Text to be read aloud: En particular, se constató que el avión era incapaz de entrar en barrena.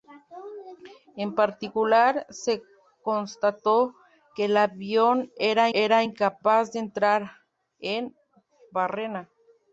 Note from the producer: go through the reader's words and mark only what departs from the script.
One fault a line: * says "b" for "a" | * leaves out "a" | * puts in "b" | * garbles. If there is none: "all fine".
* puts in "era"